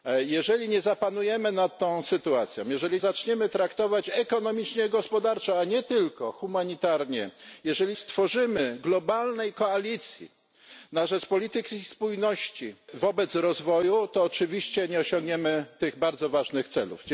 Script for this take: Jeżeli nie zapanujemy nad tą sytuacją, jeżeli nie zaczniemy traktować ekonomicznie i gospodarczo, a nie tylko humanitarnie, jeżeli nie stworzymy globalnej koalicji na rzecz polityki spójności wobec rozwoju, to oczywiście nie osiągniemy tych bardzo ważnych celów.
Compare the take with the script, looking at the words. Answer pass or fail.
fail